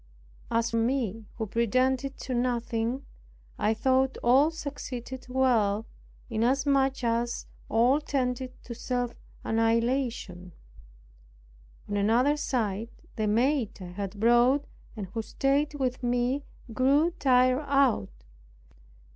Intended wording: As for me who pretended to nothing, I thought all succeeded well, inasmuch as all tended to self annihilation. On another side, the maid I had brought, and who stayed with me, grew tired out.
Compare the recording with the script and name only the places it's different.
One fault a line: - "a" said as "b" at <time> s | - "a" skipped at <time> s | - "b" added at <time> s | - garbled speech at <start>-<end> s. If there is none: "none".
- "for" skipped at 0.7 s